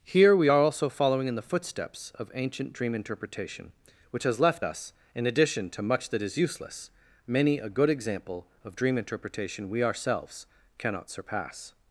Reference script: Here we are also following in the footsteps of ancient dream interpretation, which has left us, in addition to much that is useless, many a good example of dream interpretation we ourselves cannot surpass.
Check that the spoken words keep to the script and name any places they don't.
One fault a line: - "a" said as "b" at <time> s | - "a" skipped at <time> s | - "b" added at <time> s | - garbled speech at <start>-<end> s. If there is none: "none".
none